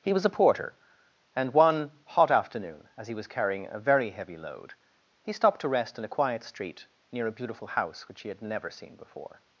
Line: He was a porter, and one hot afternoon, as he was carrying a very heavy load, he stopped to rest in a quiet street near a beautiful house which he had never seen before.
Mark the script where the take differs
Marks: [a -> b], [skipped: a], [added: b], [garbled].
He was a porter, and one hot afternoon, as he was carrying a very heavy load, he stopped to rest in a quiet street near a beautiful house which he had never seen before.